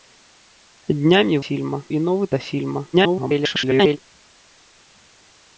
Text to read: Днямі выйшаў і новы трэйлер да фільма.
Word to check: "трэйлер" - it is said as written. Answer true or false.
false